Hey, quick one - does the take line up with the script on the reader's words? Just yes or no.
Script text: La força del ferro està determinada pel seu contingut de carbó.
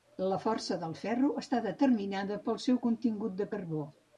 yes